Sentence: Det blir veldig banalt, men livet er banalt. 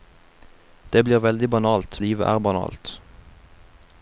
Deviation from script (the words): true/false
true